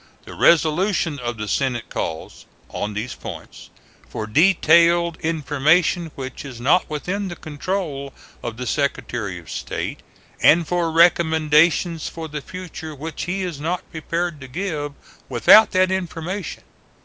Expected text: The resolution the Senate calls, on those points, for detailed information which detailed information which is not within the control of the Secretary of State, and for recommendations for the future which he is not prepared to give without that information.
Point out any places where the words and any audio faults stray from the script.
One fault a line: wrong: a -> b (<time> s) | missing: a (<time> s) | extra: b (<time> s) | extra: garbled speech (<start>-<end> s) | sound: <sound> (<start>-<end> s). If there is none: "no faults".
extra: of (1.2 s)
wrong: those -> these (3.0 s)
missing: detailed information which (6.4 s)